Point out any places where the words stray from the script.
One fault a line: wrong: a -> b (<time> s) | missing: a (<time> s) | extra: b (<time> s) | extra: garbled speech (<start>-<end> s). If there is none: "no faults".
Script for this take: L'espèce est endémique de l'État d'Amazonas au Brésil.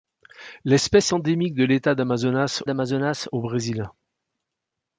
missing: est (1.1 s)
extra: d'Amazonas (2.6 s)